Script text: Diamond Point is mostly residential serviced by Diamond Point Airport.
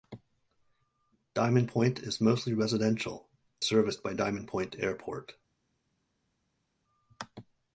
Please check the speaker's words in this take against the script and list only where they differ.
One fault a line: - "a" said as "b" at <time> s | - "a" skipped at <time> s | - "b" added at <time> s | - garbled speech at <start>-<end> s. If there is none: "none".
none